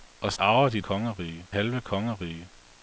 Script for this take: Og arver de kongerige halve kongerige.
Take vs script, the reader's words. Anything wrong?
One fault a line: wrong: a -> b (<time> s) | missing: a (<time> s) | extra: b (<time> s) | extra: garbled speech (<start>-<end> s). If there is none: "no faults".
no faults